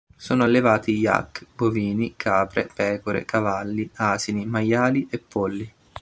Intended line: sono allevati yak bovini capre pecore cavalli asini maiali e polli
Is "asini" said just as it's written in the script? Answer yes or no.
yes